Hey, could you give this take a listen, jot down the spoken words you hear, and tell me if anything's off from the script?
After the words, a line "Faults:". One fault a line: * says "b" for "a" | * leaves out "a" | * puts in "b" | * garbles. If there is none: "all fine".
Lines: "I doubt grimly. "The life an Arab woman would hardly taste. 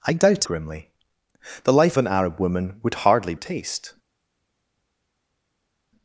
"I doubt grimly. "The life an Arab woman would hardly taste.
Faults:
all fine